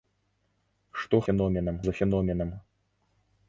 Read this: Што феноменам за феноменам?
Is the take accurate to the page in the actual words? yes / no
yes